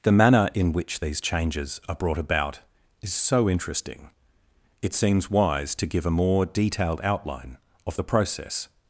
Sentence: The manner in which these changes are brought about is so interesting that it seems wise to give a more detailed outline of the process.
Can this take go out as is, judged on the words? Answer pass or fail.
fail